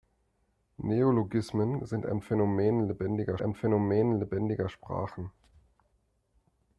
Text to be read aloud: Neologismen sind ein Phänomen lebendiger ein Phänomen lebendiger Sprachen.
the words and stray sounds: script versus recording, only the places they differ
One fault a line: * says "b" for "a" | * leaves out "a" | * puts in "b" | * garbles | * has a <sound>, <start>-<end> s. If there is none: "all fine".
all fine